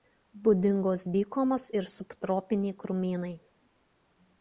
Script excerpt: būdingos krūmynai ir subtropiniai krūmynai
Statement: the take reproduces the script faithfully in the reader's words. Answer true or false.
false